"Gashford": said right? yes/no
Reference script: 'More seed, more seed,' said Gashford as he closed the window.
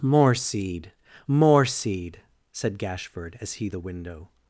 yes